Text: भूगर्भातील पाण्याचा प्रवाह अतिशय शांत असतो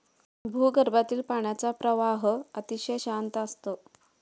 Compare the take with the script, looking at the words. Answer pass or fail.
pass